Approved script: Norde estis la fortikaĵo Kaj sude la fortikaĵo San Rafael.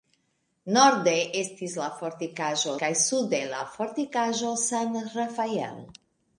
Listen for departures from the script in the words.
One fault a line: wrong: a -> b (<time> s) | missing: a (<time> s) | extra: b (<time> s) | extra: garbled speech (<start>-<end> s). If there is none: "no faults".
no faults